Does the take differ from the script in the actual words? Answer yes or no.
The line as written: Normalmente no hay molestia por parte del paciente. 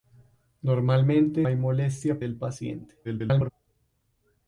yes